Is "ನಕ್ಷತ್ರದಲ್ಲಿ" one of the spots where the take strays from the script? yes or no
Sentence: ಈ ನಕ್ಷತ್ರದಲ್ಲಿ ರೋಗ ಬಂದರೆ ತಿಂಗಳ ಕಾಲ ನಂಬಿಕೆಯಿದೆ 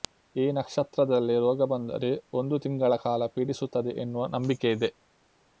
no